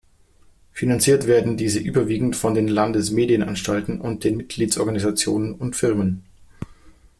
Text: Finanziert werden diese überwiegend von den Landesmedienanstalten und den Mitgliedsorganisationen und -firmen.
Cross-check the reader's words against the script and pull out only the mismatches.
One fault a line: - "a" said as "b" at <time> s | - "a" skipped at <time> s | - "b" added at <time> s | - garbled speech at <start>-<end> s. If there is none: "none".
none